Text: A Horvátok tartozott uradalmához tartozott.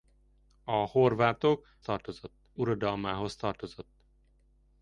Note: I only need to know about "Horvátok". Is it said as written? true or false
true